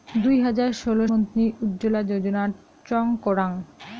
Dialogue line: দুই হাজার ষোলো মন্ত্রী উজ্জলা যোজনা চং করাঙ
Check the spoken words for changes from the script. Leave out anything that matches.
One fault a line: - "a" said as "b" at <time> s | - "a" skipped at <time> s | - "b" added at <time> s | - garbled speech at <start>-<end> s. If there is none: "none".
none